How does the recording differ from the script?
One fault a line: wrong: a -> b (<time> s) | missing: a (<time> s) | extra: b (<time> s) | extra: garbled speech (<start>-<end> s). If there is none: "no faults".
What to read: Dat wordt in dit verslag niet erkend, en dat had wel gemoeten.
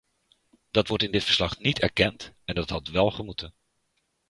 no faults